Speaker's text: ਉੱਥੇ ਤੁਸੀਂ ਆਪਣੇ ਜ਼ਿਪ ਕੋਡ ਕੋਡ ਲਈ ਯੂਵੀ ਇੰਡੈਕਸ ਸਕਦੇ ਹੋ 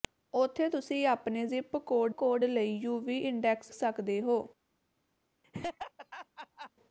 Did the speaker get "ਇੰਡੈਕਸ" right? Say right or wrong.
right